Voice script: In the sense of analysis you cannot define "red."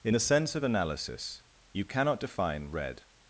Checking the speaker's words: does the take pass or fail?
pass